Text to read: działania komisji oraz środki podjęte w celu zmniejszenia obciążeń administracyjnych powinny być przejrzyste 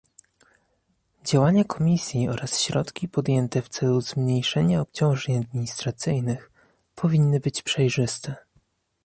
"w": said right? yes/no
yes